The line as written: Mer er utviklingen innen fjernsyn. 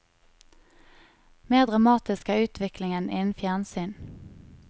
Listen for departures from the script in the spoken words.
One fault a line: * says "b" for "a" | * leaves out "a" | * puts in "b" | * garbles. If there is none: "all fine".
* puts in "dramatisk"